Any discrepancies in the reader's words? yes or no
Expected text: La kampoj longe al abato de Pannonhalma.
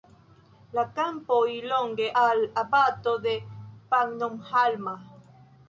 no